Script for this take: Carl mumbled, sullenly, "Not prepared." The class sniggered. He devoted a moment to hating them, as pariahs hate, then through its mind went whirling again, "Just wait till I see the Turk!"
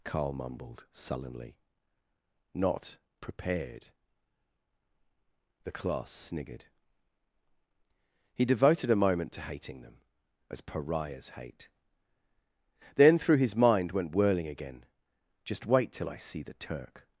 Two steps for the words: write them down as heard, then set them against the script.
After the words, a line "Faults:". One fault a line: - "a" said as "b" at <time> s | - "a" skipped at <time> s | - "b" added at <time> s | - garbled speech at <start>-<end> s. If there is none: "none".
Carl mumbled, sullenly, "Not prepared." The class sniggered. He devoted a moment to hating them, as pariahs hate, then through his mind went whirling again, "Just wait till I see the Turk!"
Faults:
- "its" said as "his" at 13.4 s